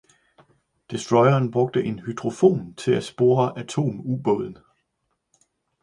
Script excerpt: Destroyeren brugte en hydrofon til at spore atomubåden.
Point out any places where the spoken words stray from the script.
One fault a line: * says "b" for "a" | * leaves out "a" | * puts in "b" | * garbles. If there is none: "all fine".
all fine